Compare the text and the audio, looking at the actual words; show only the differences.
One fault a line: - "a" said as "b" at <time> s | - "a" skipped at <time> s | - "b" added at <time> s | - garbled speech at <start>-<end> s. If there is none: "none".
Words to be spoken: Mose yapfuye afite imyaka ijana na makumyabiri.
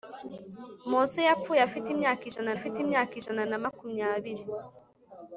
- "afite imyaka ijana" added at 2.6 s